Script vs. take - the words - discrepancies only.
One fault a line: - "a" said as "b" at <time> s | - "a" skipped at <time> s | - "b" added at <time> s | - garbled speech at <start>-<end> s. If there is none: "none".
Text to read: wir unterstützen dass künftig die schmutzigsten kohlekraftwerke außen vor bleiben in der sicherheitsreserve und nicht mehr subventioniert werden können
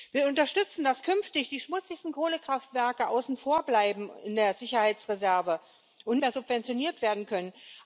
- "nicht" skipped at 6.2 s